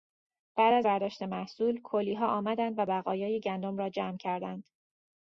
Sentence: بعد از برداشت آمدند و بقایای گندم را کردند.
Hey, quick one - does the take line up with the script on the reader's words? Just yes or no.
no